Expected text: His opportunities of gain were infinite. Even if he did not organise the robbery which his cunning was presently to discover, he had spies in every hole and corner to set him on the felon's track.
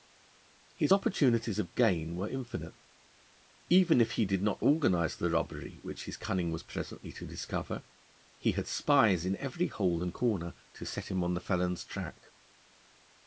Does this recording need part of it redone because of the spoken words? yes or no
no